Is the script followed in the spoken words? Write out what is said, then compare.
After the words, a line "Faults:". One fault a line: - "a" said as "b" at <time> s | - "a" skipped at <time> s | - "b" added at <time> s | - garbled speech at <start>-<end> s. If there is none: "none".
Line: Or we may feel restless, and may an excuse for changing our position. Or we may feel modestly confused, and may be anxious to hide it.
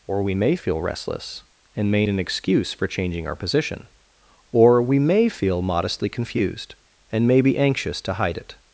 Or we may feel restless, and may an excuse for changing our position. Or we may feel modestly confused, and may be anxious to hide it.
Faults:
none